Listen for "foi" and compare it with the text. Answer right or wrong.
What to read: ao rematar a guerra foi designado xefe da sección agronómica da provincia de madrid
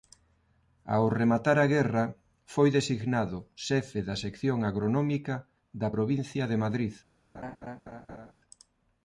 right